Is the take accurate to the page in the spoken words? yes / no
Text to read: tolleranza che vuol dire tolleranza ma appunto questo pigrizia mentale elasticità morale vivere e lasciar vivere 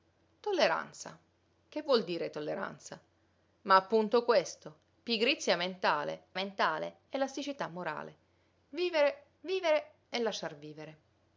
no